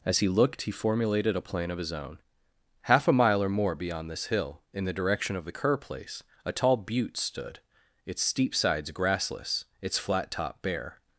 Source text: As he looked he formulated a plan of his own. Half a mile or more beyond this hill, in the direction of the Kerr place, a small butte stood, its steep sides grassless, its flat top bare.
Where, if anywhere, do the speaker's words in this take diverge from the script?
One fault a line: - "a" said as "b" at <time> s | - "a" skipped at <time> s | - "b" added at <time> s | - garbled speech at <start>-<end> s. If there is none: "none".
- "small" said as "tall" at 6.5 s